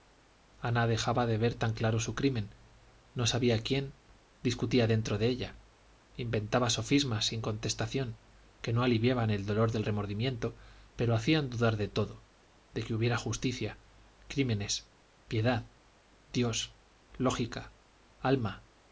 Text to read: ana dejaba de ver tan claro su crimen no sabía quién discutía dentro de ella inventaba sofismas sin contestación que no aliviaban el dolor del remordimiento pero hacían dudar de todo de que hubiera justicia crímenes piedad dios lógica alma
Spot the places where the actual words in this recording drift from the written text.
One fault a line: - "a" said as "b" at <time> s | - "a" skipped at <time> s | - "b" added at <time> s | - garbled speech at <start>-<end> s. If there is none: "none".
none